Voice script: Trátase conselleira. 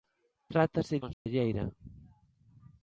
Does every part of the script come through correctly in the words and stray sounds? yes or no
no